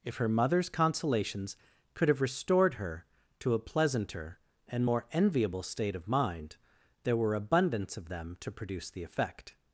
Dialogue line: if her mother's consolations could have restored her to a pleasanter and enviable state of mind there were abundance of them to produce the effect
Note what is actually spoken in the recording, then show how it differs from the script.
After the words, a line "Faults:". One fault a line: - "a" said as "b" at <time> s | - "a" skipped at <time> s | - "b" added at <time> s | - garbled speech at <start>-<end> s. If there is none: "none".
if her mother's consolations could have restored her to a pleasanter and more enviable state of mind there were abundance of them to produce the effect
Faults:
- "more" added at 4.8 s